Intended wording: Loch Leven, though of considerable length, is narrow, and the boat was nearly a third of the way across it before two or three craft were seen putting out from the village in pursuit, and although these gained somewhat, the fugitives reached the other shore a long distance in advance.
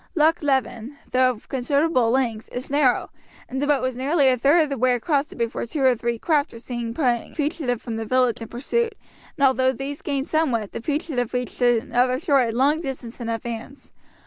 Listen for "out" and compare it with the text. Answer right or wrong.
wrong